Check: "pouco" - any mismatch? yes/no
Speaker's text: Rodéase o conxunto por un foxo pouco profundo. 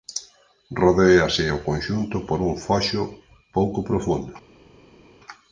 no